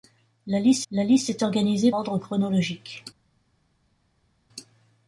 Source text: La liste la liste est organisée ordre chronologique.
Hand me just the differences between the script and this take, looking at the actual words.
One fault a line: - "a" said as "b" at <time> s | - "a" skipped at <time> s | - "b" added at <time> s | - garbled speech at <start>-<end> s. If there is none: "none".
none